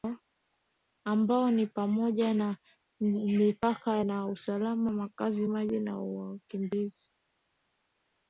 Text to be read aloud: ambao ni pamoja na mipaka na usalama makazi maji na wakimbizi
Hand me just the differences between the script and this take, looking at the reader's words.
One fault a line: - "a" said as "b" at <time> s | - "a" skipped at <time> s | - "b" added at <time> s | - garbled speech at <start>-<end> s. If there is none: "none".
none